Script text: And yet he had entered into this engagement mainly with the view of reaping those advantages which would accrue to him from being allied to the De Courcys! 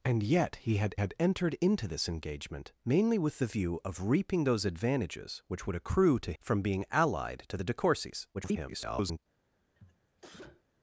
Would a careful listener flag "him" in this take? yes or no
yes